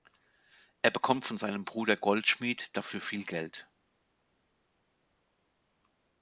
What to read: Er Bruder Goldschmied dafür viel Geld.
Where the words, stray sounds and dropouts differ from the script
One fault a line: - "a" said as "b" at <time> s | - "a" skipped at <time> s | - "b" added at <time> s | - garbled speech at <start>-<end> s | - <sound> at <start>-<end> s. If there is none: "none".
- "bekommt von seinem" added at 0.9 s